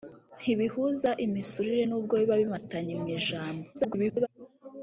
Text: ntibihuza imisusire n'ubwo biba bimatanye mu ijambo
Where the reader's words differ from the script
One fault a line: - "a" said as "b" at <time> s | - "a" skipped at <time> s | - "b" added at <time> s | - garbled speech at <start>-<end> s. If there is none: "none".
- garbled speech at 3.7-4.3 s